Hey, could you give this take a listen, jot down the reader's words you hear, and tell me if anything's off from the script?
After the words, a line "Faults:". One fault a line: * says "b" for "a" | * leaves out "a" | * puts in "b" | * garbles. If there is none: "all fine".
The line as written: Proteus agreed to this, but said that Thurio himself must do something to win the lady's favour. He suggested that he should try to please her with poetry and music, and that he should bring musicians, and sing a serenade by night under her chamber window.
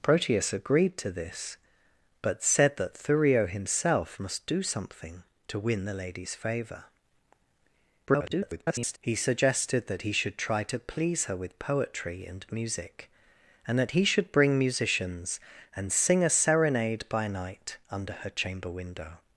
Proteus agreed to this, but said that Thurio himself must do something to win the lady's favour. [garbled] He suggested that he should try to please her with poetry and music, and that he should bring musicians, and sing a serenade by night under her chamber window.
Faults:
* garbles